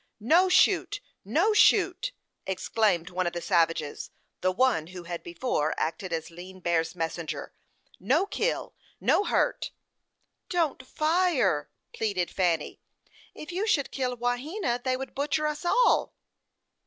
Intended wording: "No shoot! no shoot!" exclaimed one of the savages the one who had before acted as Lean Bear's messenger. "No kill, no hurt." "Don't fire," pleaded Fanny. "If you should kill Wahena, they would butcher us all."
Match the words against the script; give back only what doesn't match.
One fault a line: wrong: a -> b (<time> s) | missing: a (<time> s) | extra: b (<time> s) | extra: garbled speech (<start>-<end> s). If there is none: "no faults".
no faults